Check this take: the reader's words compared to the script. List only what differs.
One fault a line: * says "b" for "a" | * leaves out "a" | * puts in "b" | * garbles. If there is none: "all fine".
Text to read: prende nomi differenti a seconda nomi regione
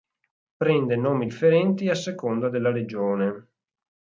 * says "della" for "nomi"